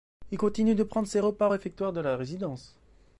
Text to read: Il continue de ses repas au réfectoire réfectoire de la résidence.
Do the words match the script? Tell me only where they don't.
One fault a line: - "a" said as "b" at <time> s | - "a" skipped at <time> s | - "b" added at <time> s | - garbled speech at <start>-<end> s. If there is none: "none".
- "prendre" added at 0.8 s
- "réfectoire" skipped at 1.9 s